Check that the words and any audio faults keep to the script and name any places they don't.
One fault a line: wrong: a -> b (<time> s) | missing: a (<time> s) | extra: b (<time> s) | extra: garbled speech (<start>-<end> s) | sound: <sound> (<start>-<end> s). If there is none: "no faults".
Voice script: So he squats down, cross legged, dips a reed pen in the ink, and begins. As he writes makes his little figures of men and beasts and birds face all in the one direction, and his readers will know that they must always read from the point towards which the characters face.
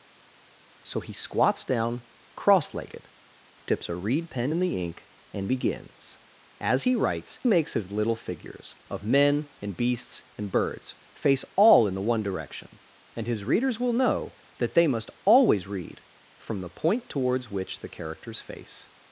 no faults